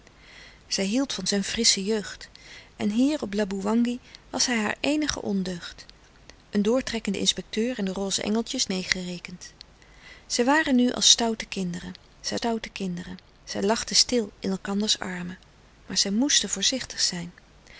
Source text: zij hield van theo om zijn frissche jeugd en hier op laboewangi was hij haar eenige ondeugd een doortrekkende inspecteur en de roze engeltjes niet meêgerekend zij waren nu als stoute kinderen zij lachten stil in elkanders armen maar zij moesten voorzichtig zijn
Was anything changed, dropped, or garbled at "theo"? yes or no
yes